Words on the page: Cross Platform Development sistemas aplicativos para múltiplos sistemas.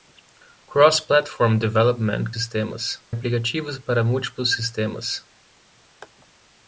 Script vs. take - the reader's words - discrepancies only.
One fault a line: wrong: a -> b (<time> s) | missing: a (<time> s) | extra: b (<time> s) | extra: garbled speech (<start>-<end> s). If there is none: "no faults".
no faults